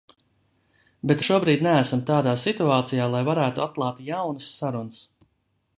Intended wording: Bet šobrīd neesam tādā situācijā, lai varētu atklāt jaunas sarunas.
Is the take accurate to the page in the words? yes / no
yes